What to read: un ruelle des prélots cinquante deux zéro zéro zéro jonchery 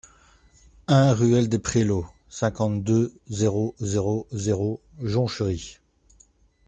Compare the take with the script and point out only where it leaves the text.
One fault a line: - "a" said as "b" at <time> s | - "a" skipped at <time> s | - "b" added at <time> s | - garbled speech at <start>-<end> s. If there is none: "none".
none